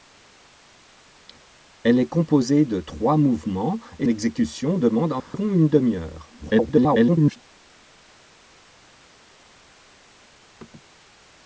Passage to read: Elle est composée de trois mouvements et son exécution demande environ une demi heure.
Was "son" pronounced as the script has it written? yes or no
no